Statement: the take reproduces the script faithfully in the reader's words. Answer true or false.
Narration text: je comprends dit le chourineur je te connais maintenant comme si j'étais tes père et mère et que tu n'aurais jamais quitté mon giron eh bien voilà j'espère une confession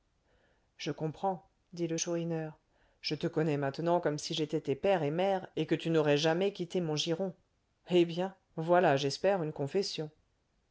true